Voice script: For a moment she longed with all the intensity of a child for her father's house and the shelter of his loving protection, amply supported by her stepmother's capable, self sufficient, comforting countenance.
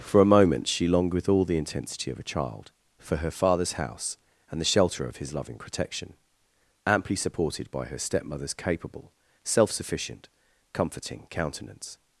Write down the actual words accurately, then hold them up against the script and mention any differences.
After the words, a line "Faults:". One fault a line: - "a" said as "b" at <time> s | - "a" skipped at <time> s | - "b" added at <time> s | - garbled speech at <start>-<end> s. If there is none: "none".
For a moment she longed with all the intensity of a child for her father's house and the shelter of his loving protection, amply supported by her stepmother's capable, self sufficient, comforting countenance.
Faults:
none